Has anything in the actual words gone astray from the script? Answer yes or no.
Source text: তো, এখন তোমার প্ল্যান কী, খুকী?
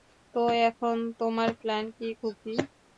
no